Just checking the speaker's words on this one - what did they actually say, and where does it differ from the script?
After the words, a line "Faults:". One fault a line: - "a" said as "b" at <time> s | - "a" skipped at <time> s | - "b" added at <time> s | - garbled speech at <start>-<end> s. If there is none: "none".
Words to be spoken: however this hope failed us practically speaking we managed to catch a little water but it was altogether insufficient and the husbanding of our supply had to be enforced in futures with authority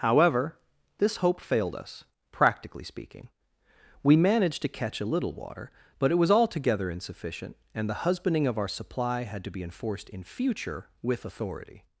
however this hope failed us practically speaking we managed to catch a little water but it was altogether insufficient and the husbanding of our supply had to be enforced in future with authority
Faults:
- "futures" said as "future" at 10.2 s